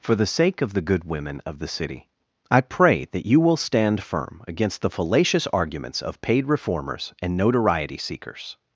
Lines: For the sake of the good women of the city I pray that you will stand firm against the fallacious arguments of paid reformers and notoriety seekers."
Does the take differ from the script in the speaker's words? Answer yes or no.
no